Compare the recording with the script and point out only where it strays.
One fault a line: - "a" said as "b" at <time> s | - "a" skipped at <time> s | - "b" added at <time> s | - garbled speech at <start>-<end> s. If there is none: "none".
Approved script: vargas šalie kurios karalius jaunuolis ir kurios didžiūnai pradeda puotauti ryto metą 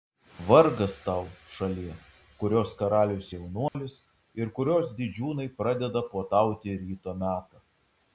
- "tau" added at 1.1 s